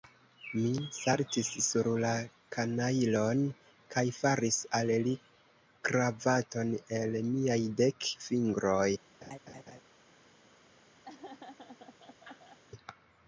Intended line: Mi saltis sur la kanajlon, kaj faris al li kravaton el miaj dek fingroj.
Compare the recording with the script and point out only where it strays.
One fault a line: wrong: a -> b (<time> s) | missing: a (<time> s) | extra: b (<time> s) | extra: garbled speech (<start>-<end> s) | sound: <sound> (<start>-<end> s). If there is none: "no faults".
sound: laugh (9.2-9.8 s)
sound: laugh (11.0-12.6 s)